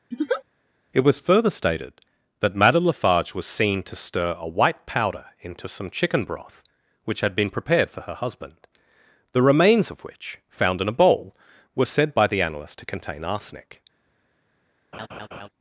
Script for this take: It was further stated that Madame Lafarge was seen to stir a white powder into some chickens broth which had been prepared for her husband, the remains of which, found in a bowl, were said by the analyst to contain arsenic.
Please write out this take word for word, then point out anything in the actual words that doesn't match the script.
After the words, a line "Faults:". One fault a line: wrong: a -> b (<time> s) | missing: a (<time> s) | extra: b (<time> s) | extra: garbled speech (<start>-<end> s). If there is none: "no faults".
It was further stated that Madame Lafarge was seen to stir a white powder into some chicken broth which had been prepared for her husband, the remains of which, found in a bowl, were said by the analyst to contain arsenic.
Faults:
wrong: chickens -> chicken (5.9 s)